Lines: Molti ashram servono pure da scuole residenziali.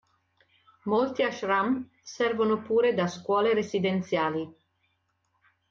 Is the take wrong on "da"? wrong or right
right